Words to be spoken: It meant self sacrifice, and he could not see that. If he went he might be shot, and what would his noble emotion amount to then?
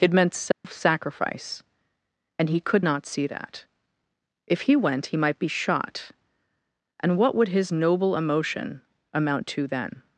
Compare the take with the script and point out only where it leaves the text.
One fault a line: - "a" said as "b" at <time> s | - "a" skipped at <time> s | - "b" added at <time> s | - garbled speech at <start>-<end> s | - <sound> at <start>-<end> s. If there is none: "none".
- dropout at 0.5-0.6 s